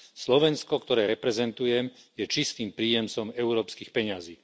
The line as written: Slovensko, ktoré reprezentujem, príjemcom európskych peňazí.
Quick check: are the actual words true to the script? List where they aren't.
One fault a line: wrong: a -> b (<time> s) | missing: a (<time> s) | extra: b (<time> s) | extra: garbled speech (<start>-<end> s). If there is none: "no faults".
extra: je čistým (2.1 s)